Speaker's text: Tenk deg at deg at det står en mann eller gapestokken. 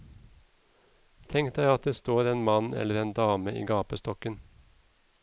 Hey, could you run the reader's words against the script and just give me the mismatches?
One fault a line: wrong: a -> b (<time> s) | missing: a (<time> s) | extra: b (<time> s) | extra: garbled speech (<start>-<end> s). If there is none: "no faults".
missing: deg at (1.9 s)
extra: en dame i (3.0 s)